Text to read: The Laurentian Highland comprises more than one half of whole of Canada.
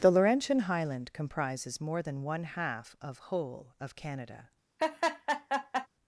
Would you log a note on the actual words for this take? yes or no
no